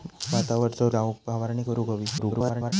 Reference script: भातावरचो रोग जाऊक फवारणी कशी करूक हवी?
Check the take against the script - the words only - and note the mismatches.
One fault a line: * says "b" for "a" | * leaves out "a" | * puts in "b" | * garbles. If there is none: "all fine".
* leaves out "रोग"
* leaves out "कशी"
* garbles